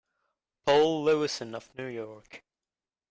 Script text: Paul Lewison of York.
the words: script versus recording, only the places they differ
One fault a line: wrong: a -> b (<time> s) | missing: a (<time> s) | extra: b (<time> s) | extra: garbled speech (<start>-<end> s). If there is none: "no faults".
extra: New (1.8 s)